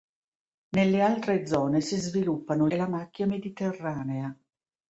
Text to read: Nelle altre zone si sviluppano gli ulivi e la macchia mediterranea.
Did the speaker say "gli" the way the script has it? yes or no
no